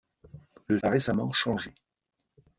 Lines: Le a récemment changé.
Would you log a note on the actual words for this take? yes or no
no